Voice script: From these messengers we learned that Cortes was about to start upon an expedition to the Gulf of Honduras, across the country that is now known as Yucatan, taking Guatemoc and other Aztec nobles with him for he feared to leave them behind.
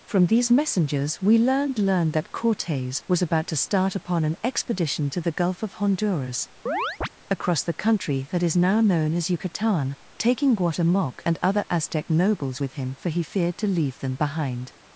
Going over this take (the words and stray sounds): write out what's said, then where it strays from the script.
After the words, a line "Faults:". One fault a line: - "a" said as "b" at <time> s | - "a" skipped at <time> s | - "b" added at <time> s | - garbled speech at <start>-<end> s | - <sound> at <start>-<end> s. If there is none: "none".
From these messengers we learned learned that Cortes was about to start upon an expedition to the Gulf of Honduras, across the country that is now known as Yucatan, taking Guatemoc and other Aztec nobles with him for he feared to leave them behind.
Faults:
- "learned" added at 1.8 s
- chirp at 6.7-7.1 s